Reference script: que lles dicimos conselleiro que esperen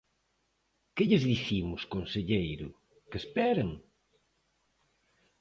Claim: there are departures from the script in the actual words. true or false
false